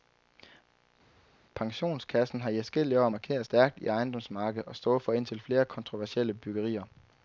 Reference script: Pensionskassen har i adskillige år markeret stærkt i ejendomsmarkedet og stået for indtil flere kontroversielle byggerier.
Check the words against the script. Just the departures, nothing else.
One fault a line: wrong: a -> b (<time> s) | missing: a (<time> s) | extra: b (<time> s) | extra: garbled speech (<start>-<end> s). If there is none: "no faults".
no faults